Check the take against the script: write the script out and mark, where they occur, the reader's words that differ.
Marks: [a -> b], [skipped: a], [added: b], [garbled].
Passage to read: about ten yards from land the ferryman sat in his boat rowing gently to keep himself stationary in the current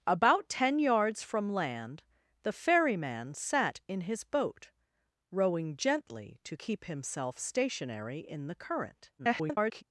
about ten yards from land the ferryman sat in his boat rowing gently to keep himself stationary in the current [garbled]